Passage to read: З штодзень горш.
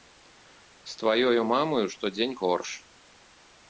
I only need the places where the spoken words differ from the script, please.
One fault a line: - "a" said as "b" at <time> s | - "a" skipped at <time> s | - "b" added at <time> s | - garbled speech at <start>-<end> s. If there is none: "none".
- "тваёю мамаю" added at 1.0 s